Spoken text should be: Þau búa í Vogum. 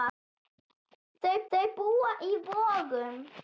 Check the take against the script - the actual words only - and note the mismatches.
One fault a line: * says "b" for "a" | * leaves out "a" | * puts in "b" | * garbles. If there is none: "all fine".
* puts in "þau"